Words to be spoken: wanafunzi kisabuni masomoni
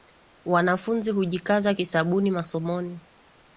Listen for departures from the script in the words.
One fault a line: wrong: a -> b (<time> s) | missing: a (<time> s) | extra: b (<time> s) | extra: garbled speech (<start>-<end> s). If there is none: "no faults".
extra: hujikaza (1.1 s)